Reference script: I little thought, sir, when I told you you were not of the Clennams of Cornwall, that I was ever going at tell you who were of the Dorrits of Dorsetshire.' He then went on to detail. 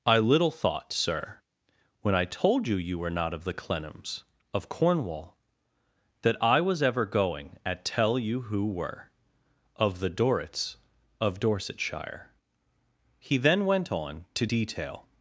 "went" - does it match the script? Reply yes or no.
yes